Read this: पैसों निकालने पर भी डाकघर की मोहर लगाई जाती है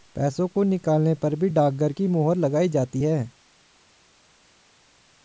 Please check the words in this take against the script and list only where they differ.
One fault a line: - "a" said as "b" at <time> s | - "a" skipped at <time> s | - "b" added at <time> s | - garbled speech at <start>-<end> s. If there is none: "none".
- "को" added at 0.5 s